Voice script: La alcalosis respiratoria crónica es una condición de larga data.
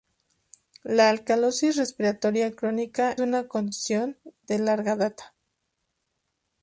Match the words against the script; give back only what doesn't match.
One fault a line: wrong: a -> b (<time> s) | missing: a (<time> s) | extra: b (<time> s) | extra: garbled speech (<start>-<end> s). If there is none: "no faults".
missing: es (3.1 s)